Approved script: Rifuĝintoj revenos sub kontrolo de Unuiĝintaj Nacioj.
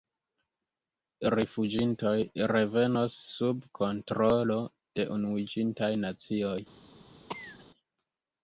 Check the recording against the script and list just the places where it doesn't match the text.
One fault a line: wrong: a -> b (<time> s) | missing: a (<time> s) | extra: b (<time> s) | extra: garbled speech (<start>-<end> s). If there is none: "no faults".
no faults